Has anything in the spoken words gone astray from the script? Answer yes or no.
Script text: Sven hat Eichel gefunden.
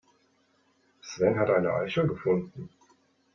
yes